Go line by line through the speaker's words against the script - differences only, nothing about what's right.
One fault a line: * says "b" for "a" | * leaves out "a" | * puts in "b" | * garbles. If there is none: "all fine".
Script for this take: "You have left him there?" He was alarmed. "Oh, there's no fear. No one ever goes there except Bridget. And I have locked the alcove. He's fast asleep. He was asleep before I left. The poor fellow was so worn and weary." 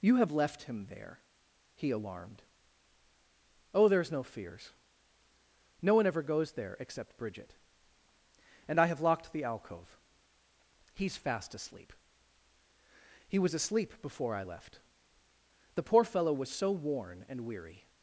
* leaves out "was"
* says "fears" for "fear"